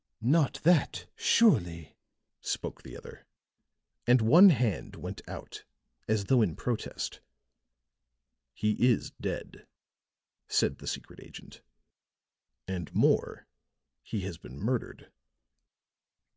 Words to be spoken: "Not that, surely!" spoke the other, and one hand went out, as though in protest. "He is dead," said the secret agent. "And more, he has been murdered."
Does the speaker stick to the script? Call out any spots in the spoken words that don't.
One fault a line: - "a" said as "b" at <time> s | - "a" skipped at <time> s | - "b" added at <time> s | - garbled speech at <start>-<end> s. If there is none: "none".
none